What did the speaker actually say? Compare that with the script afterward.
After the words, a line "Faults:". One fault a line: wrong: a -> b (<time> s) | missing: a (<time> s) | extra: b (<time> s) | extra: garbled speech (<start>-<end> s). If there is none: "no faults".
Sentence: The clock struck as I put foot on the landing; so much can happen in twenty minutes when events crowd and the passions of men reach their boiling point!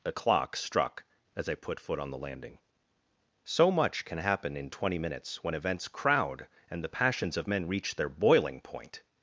The clock struck as I put foot on the landing; so much can happen in twenty minutes when events crowd and the passions of men reach their boiling point!
Faults:
no faults